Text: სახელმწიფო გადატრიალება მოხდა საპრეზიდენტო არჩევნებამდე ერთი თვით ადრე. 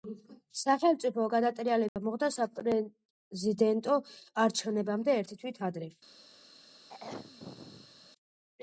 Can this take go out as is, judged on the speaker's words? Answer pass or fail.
pass